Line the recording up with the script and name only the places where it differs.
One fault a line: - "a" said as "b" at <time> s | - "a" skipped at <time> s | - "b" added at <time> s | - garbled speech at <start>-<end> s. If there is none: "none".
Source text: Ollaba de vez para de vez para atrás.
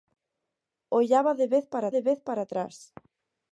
none